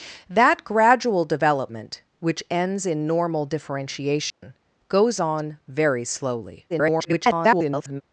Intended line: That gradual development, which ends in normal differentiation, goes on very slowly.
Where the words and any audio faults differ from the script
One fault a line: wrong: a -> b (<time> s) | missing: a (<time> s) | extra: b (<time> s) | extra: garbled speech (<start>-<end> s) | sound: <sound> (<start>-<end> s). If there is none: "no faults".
sound: dropout (4.3-4.4 s)
extra: garbled speech (6.7-8.0 s)